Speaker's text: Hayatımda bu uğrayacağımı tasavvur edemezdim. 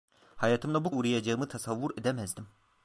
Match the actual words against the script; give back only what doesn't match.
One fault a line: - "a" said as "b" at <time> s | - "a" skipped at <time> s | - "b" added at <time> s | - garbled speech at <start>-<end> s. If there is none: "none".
none